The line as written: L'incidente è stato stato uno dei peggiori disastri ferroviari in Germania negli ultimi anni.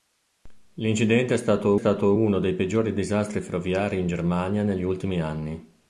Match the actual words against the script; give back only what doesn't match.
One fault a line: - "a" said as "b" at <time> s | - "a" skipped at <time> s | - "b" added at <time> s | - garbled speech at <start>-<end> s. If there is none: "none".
none